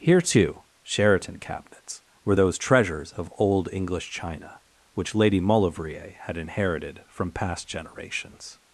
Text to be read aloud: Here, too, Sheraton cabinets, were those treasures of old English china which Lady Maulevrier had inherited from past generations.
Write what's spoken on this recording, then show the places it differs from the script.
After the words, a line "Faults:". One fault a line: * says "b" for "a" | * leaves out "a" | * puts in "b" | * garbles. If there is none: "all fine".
Here, too, Sheraton cabinets, were those treasures of old English china which Lady Maulevrier had inherited from past generations.
Faults:
all fine